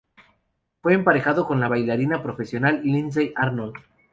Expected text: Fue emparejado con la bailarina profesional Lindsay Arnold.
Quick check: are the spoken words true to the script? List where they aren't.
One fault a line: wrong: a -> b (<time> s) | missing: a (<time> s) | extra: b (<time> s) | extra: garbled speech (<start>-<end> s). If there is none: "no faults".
no faults